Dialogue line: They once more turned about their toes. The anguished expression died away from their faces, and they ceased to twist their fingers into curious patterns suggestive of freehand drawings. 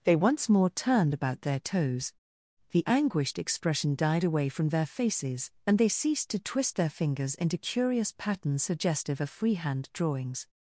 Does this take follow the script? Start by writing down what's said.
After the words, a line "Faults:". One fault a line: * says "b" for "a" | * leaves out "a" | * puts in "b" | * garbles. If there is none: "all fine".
They once more turned about their toes. The anguished expression died away from their faces, and they ceased to twist their fingers into curious patterns suggestive of freehand drawings.
Faults:
all fine